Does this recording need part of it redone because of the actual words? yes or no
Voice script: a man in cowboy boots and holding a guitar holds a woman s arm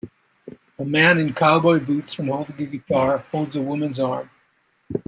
no